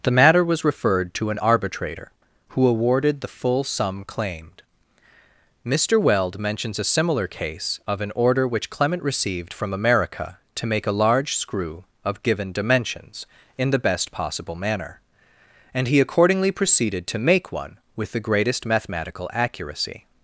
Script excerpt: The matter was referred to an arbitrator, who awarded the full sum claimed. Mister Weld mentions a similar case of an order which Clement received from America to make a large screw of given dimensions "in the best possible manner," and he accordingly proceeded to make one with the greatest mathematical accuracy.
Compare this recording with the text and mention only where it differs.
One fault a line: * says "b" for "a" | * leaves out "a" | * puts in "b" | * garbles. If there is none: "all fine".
all fine